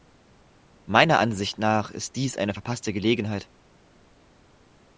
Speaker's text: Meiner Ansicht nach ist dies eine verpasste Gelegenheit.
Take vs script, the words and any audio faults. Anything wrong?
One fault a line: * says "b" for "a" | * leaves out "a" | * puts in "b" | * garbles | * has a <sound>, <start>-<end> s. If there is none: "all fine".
all fine